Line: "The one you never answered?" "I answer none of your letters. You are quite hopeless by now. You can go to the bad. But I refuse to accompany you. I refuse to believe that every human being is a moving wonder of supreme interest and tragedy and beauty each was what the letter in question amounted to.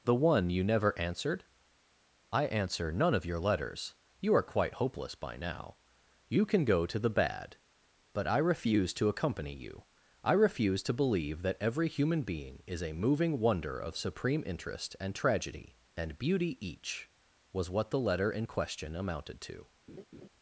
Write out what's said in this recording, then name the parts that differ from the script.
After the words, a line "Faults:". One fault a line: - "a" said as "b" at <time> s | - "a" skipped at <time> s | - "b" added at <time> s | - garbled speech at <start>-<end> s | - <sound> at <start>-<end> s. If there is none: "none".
"The one you never answered?" "I answer none of your letters. You are quite hopeless by now. You can go to the bad. But I refuse to accompany you. I refuse to believe that every human being is a moving wonder of supreme interest and tragedy and beauty each was what the letter in question amounted to.
Faults:
- laugh at 19.9-20.3 s